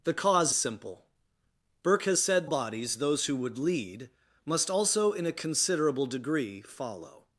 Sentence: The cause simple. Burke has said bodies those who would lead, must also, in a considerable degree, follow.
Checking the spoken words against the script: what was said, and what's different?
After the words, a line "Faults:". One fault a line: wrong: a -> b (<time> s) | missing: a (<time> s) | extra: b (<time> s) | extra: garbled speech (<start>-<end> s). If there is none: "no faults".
The cause simple. Burke has said bodies those who would lead, must also, in a considerable degree, follow.
Faults:
no faults